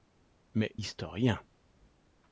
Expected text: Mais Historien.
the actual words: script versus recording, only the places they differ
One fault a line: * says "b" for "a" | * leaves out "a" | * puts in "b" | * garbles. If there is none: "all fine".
all fine